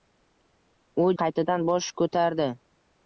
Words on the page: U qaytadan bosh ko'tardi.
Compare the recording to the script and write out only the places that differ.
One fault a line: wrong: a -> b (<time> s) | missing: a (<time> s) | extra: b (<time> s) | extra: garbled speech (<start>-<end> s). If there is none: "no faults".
no faults